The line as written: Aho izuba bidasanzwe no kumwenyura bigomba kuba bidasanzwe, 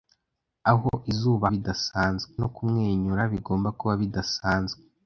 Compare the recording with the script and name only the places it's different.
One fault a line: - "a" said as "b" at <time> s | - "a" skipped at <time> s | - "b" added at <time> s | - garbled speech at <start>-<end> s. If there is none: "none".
none